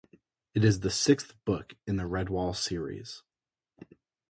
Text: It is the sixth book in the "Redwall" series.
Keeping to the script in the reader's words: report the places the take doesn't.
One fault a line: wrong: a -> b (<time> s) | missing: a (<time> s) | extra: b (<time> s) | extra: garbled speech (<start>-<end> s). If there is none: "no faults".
no faults